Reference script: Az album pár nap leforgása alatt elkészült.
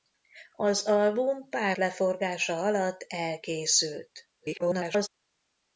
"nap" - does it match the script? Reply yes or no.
no